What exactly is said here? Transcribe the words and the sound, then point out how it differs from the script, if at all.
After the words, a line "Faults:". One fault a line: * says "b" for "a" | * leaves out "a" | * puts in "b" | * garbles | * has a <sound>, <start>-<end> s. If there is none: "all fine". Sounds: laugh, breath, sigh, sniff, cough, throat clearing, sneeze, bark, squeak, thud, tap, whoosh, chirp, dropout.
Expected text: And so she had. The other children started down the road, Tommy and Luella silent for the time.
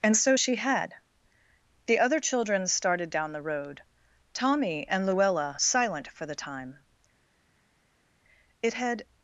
And so she had. The other children started down the road, Tommy and Luella silent for the time. It had
Faults:
* puts in "It had"